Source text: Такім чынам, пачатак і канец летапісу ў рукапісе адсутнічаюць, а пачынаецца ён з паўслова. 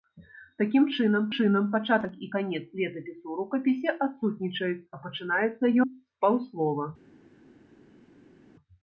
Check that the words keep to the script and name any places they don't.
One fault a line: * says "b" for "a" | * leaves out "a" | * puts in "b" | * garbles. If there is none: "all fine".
* puts in "чынам"
* leaves out "ён"